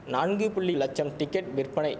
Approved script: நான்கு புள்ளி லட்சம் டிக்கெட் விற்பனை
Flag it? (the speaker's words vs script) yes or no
no